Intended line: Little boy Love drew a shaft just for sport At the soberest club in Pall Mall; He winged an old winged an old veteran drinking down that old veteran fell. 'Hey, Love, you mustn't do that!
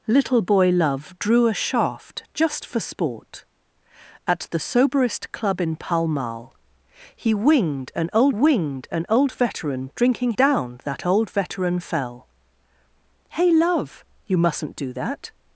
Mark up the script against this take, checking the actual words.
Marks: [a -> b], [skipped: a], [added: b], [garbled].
Little boy Love drew a shaft just for sport At the soberest club in Pall Mall; He winged an old winged an old veteran drinking down that old veteran fell. 'Hey, Love, you mustn't do that!